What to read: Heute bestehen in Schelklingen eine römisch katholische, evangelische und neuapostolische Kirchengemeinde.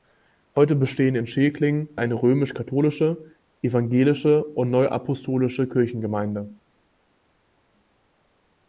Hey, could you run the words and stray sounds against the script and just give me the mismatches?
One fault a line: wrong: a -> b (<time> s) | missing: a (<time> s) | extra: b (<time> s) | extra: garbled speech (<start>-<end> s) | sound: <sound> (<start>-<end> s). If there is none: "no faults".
no faults